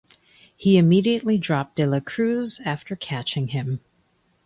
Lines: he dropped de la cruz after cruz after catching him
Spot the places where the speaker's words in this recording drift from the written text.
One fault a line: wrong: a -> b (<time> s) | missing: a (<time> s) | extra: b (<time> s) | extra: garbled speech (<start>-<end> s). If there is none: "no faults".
extra: immediately (0.8 s)
missing: cruz after (3.0 s)